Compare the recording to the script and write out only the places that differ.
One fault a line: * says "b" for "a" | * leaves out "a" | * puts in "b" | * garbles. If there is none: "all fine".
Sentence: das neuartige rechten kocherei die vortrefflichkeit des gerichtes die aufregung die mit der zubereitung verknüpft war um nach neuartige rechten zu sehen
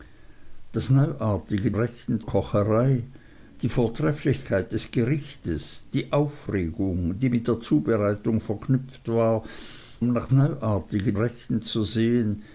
all fine